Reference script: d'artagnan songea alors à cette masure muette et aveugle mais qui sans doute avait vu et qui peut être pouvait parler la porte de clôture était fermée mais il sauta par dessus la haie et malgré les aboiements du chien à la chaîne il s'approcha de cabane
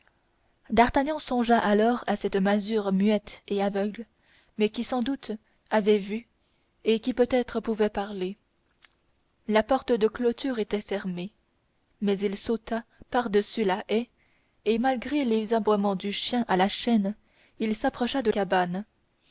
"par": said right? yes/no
yes